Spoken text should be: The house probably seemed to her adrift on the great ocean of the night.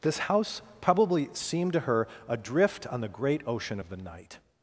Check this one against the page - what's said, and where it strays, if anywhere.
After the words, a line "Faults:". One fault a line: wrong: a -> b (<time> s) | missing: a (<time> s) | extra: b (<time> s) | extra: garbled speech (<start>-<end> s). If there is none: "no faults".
This house probably seemed to her adrift on the great ocean of the night.
Faults:
wrong: The -> This (0.0 s)